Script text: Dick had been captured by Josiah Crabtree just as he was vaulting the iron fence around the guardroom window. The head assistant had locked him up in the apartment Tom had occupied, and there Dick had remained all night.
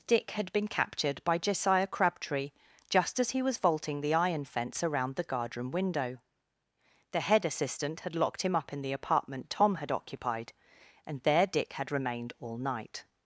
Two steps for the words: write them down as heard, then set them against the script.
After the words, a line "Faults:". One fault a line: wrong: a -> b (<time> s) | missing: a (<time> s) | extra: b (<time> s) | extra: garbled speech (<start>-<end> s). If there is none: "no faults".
Dick had been captured by Josiah Crabtree just as he was vaulting the iron fence around the guardroom window. The head assistant had locked him up in the apartment Tom had occupied, and there Dick had remained all night.
Faults:
no faults